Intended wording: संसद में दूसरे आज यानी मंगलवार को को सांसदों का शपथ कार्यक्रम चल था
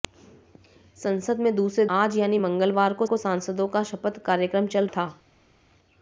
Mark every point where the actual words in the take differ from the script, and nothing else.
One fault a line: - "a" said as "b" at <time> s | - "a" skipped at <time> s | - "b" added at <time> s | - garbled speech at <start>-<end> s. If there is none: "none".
none